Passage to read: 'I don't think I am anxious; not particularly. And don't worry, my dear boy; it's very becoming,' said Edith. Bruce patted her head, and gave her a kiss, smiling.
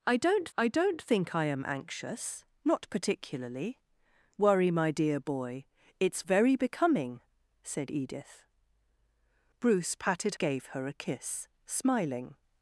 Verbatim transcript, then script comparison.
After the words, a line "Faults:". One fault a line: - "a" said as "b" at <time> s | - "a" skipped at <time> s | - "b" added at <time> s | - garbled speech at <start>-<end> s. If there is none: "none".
'I don't I don't think I am anxious; not particularly. Worry, my dear boy; it's very becoming,' said Edith. Bruce patted gave her a kiss, smiling.
Faults:
- "I don't" added at 0.6 s
- "And don't" skipped at 3.8 s
- "her head and" skipped at 10.3 s